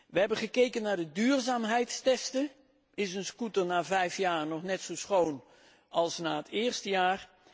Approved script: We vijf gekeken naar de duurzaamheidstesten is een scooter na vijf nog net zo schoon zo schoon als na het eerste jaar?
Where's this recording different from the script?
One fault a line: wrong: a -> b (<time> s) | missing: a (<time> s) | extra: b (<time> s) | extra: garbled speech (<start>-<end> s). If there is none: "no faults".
wrong: vijf -> hebben (0.2 s)
extra: jaar (4.2 s)
missing: zo schoon (5.4 s)